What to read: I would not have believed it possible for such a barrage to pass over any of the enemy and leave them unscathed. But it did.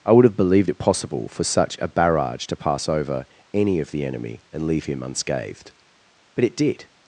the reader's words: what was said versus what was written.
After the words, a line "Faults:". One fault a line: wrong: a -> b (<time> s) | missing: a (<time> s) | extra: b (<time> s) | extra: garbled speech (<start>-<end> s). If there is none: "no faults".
I would have believed it possible for such a barrage to pass over any of the enemy and leave him unscathed. But it did.
Faults:
missing: not (0.2 s)
wrong: them -> him (4.8 s)